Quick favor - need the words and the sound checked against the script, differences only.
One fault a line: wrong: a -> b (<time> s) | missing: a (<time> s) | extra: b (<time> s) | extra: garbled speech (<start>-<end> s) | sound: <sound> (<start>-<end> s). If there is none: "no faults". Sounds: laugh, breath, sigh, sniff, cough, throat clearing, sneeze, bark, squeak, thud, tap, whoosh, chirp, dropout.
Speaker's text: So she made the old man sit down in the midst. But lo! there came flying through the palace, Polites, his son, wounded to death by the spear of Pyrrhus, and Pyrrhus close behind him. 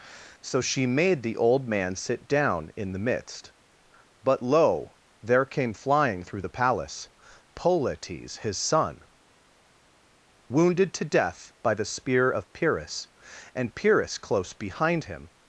no faults